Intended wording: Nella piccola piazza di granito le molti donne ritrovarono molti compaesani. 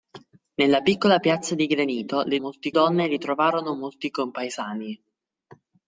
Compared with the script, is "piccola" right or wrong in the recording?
right